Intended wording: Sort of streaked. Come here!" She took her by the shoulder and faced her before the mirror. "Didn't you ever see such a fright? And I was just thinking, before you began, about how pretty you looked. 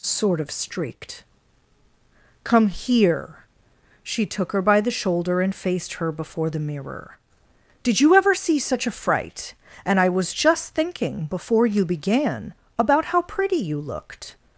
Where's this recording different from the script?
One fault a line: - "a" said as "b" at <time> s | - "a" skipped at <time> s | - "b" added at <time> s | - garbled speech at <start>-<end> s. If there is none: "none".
- "Didn't" said as "Did" at 7.8 s